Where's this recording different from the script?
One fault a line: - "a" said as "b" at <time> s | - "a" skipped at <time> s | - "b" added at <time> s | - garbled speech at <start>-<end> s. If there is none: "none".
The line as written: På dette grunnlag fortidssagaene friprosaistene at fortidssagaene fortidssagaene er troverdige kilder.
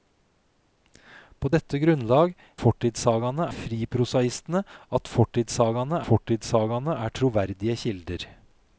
none